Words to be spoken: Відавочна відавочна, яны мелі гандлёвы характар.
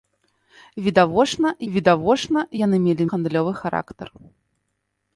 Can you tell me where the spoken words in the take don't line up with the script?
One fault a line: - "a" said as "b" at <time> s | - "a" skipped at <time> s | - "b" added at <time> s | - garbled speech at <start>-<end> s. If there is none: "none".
none